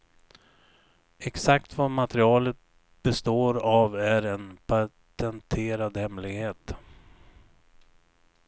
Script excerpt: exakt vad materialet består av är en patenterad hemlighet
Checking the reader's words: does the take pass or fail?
pass